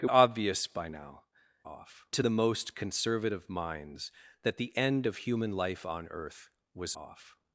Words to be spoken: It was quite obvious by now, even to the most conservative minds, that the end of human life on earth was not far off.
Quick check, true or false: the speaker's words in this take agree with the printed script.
false